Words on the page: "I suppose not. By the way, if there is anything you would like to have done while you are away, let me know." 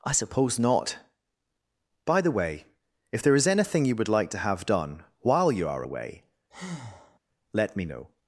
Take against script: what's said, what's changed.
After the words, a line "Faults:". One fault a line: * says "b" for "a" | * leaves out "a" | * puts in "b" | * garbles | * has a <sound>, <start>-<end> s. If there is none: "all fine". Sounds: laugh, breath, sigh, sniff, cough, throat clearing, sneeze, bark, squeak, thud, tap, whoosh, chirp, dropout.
"I suppose not. By the way, if there is anything you would like to have done while you are away, let me know."
Faults:
* has a breath, 6.5-7.2 s